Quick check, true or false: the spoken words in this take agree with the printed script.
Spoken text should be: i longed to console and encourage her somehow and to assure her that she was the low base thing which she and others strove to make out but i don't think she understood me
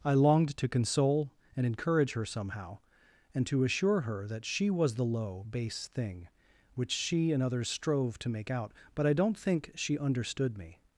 true